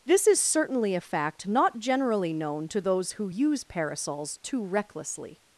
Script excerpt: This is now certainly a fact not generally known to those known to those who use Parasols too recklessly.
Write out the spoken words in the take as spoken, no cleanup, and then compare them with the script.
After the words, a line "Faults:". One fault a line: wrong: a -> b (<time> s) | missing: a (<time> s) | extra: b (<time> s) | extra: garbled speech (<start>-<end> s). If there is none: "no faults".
This is certainly a fact not generally known to those who use Parasols too recklessly.
Faults:
missing: now (0.4 s)
missing: known to those (3.1 s)